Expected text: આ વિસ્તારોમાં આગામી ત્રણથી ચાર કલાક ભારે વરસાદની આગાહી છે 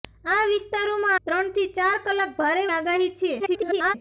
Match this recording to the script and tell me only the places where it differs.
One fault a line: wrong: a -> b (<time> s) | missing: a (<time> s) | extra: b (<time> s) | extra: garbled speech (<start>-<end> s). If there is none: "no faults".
missing: આગામી (1.2 s)
missing: વરસાદની (2.6 s)
extra: garbled speech (3.4-3.9 s)